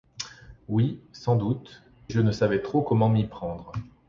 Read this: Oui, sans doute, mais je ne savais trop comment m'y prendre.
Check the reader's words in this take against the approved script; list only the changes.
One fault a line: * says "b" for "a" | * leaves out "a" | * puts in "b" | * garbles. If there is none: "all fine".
* leaves out "mais"